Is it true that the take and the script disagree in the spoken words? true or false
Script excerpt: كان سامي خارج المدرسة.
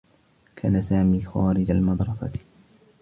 false